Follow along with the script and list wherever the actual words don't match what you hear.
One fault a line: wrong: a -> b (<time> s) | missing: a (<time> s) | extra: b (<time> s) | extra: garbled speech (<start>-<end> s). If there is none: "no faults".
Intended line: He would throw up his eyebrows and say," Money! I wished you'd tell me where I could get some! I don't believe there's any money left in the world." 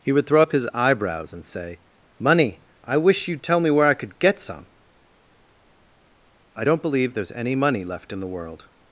wrong: wished -> wish (3.0 s)